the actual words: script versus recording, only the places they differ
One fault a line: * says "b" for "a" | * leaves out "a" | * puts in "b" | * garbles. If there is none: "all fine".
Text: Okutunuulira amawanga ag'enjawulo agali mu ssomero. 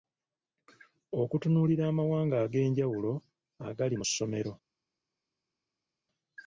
all fine